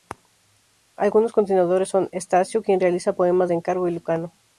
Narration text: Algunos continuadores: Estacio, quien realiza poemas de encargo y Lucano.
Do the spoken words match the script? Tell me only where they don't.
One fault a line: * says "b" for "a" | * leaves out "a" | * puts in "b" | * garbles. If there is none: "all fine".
* puts in "son"